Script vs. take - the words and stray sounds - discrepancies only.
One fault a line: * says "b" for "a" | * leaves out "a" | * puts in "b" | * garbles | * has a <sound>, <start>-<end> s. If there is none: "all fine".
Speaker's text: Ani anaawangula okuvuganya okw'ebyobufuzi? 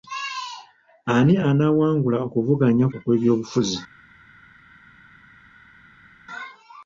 all fine